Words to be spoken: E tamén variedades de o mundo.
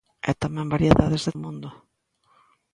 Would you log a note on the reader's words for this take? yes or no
no